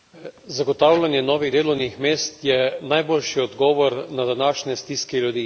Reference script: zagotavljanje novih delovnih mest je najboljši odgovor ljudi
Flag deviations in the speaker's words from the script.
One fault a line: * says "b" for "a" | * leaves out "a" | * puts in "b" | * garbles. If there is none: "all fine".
* puts in "na današnje stiske"